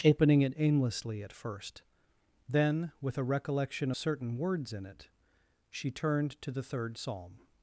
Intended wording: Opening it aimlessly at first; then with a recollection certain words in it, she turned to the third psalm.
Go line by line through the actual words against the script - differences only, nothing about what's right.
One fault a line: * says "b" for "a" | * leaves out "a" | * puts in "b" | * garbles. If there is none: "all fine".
all fine